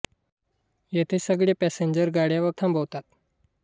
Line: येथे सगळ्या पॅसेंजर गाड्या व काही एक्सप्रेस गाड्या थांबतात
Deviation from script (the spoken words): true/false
true